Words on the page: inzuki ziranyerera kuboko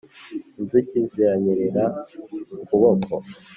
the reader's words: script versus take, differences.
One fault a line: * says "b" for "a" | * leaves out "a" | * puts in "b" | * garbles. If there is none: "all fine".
all fine